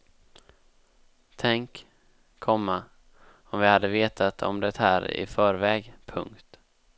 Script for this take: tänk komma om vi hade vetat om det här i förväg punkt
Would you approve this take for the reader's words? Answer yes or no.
yes